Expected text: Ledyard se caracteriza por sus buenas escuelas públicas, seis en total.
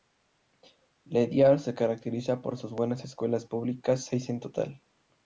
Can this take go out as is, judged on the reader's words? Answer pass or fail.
pass